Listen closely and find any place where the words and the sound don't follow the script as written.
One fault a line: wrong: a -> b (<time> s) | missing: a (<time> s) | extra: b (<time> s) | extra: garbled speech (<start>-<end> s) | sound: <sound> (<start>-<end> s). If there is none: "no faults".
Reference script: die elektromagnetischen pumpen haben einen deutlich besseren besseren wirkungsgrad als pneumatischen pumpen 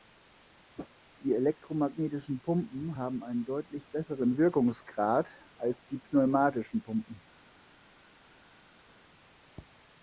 missing: besseren (4.4 s)
extra: die (5.8 s)